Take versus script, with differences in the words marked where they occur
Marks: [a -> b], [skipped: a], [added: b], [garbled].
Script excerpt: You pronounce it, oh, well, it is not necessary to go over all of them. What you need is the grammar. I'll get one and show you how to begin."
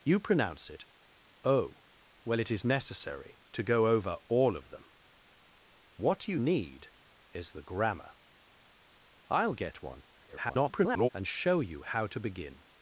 You pronounce it, oh, well, it is [skipped: not] necessary to go over all of them. What you need is the grammar. I'll get one [garbled] and show you how to begin."